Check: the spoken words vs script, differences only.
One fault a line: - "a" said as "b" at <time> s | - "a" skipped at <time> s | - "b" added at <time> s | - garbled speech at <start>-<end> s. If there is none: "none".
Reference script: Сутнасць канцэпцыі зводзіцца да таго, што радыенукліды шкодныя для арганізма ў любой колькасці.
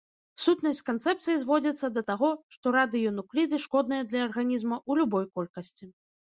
none